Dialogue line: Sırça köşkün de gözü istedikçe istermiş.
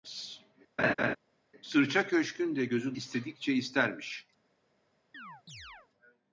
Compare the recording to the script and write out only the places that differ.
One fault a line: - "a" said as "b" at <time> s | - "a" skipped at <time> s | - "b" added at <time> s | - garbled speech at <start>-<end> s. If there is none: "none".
none